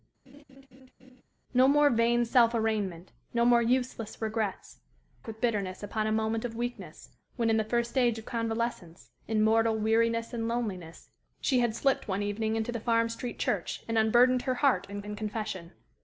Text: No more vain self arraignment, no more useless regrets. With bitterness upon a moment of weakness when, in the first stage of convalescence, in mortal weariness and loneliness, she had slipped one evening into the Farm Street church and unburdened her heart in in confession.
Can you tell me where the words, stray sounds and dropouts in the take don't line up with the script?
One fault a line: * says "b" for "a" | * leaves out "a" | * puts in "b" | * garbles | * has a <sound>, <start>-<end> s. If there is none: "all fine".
* has a laugh, 0.3-1.2 s